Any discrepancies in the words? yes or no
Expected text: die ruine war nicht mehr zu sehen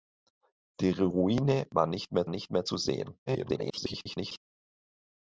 yes